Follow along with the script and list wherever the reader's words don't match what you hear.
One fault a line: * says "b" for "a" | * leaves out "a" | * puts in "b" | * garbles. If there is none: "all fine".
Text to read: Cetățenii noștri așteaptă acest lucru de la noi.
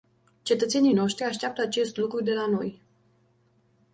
all fine